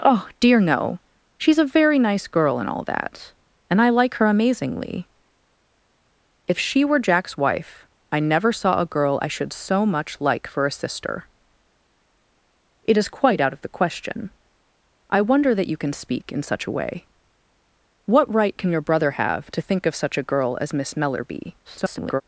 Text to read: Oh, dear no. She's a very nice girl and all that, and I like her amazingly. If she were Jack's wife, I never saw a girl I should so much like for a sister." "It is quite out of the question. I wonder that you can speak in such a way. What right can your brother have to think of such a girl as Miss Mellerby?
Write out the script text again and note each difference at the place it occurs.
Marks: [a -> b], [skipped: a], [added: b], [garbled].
Oh, dear no. She's a very nice girl and all that, and I like her amazingly. If she were Jack's wife, I never saw a girl I should so much like for a sister." "It is quite out of the question. I wonder that you can speak in such a way. What right can your brother have to think of such a girl as Miss Mellerby? [garbled]